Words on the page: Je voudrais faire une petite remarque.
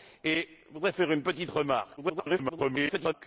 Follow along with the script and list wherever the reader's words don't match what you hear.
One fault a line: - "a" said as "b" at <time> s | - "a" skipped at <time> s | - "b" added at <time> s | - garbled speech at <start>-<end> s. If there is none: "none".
- garbled speech at 2.0-3.1 s